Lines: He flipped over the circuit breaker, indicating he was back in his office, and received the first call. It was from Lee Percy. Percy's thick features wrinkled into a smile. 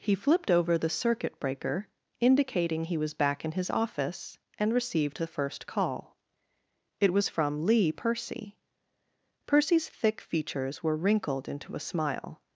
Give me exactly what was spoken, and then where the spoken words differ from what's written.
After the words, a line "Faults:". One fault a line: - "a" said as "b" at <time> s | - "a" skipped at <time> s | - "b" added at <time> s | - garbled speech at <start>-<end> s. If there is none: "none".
He flipped over the circuit breaker, indicating he was back in his office, and received the first call. It was from Lee Percy. Percy's thick features were wrinkled into a smile.
Faults:
- "were" added at 10.8 s